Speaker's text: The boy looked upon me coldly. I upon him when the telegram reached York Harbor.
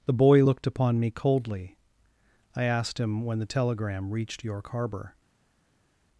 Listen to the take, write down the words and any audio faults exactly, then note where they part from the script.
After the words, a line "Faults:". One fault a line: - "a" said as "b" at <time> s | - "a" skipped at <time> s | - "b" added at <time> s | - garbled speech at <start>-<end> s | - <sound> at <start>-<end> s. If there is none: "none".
The boy looked upon me coldly. I asked him when the telegram reached York Harbor.
Faults:
- "upon" said as "asked" at 2.6 s